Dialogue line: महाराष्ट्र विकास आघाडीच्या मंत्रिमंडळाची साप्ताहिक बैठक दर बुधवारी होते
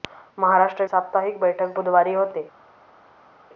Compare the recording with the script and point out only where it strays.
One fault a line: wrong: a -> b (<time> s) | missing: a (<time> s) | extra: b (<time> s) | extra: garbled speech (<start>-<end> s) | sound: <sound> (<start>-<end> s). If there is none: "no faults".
missing: विकास आघाडीच्या मंत्रिमंडळाची (0.8 s)
missing: दर (1.8 s)